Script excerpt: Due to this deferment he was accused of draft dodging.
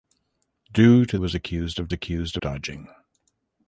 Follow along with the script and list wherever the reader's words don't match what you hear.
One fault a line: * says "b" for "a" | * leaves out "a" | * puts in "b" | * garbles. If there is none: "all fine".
* leaves out "this deferment he"
* says "accused" for "draft"